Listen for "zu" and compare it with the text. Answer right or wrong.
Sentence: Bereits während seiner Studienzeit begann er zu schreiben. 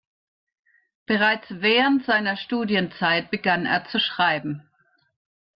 right